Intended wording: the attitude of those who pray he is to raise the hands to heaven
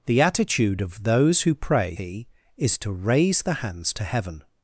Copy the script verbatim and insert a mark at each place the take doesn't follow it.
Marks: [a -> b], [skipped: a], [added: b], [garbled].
the attitude of those who pray he is to raise the hands to heaven